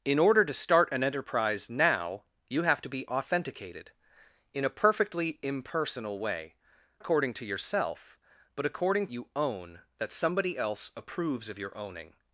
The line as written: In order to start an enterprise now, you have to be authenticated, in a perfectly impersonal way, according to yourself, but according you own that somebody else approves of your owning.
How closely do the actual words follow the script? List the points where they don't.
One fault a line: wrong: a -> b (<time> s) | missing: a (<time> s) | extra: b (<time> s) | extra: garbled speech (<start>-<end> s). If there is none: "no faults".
no faults